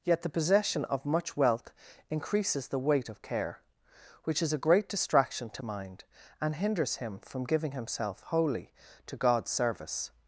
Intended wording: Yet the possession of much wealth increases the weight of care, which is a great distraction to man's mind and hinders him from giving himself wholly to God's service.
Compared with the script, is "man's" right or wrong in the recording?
wrong